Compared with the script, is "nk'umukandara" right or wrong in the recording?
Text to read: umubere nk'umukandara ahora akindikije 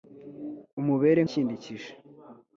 wrong